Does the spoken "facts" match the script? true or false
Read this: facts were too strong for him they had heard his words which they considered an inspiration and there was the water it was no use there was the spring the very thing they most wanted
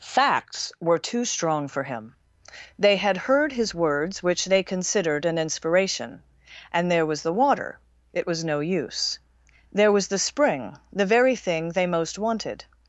true